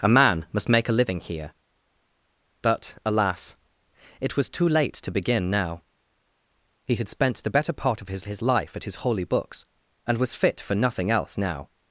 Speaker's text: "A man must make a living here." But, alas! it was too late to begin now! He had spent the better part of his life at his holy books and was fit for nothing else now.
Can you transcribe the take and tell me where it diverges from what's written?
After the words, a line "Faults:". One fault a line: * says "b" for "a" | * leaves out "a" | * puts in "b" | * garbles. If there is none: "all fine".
"A man must make a living here." But, alas! it was too late to begin now! He had spent the better part of his his life at his holy books and was fit for nothing else now.
Faults:
* puts in "his"